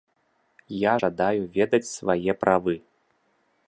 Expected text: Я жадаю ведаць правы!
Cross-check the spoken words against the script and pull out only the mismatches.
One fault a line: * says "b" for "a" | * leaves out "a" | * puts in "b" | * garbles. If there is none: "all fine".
* puts in "свае"